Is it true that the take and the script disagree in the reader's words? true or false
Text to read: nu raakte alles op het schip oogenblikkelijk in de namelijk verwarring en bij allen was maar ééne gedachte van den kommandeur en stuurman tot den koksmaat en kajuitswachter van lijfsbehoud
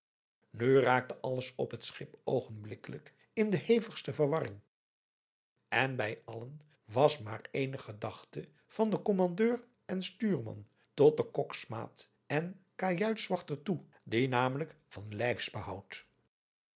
true